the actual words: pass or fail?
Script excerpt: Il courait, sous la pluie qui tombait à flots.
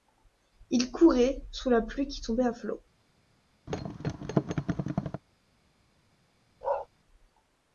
pass